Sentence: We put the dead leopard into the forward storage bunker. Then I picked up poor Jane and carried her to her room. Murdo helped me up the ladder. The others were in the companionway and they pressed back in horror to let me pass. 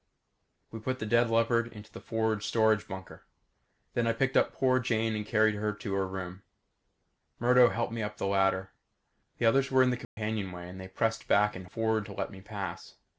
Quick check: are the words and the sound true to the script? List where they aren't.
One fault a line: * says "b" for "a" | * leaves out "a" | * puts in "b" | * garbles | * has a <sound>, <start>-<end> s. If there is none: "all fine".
* has a dropout, 10.0-10.2 s
* says "forward" for "horror"